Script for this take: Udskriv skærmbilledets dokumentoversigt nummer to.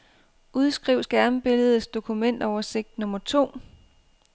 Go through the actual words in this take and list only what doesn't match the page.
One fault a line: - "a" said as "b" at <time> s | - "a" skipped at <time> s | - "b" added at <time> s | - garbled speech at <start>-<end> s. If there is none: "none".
none